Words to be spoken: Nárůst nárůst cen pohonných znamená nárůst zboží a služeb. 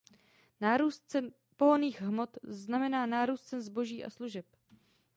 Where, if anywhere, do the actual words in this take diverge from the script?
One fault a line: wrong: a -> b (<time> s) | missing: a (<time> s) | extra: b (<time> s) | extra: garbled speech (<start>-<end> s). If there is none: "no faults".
missing: nárůst (1.0 s)
extra: hmot (2.0 s)
extra: cen (3.4 s)